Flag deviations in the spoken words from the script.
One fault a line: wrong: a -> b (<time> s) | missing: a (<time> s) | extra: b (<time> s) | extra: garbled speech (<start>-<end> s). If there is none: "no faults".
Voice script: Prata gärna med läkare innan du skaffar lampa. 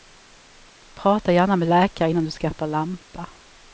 no faults